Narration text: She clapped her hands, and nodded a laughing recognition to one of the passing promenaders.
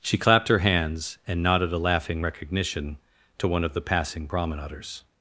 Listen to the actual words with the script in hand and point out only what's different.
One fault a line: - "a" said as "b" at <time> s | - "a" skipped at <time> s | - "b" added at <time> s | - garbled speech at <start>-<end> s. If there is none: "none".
none